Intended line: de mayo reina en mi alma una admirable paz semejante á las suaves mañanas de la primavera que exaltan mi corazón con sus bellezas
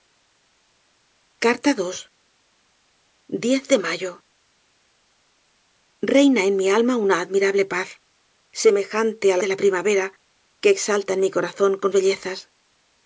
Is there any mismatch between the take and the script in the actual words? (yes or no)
yes